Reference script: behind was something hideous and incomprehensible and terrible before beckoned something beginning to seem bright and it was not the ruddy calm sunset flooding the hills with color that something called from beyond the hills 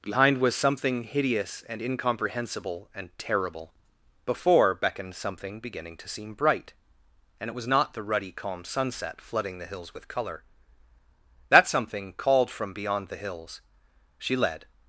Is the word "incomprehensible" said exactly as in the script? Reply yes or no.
yes